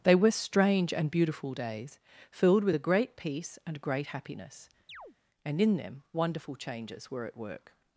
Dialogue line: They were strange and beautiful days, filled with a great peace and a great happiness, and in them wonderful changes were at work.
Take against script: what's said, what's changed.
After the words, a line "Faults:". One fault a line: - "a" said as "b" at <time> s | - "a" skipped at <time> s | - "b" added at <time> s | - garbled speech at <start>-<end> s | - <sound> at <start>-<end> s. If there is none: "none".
They were strange and beautiful days, filled with a great peace and great happiness, and in them wonderful changes were at work.
Faults:
- "a" skipped at 3.8 s
- chirp at 4.9-5.2 s